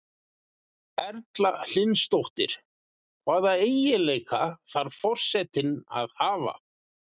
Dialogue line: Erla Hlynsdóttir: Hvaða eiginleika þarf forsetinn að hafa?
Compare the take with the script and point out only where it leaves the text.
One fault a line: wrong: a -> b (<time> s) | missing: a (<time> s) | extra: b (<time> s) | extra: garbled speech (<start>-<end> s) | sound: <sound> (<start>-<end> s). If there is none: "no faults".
no faults